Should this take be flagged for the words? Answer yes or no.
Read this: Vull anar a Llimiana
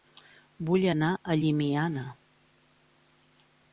no